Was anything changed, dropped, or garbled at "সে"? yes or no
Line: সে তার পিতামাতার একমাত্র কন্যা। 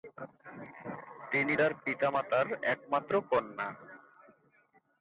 yes